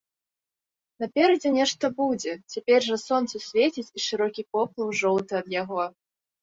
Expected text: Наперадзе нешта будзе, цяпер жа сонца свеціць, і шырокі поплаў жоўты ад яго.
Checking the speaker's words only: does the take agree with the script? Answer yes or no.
yes